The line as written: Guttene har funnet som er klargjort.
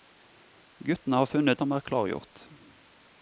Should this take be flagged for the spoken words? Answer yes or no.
no